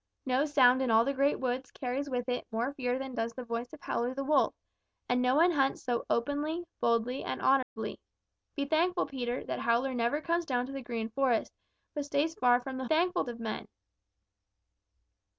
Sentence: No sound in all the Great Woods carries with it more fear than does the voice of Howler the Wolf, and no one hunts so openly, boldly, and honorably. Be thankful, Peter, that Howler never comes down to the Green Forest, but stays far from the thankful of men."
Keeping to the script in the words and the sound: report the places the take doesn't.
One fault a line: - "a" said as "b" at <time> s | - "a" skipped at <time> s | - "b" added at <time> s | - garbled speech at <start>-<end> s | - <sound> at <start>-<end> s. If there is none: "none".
- dropout at 7.6-7.8 s